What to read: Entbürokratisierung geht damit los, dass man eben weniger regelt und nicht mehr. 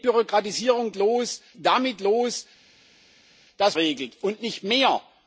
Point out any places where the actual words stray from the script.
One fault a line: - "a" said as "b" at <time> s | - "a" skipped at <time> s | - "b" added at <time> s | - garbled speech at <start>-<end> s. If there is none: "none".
- "geht" said as "los" at 0.9 s
- "man eben weniger" skipped at 3.8 s